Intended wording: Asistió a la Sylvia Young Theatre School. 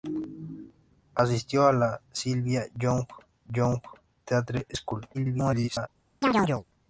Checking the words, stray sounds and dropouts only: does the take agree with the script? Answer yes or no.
no